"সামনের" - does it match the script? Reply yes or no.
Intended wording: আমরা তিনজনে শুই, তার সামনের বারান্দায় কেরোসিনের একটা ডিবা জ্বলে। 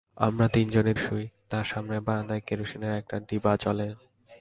yes